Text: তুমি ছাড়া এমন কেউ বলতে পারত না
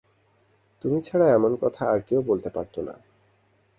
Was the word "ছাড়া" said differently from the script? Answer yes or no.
no